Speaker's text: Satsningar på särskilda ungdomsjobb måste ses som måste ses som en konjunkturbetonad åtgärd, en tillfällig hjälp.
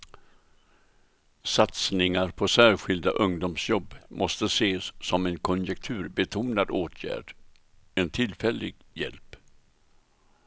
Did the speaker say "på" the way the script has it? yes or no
yes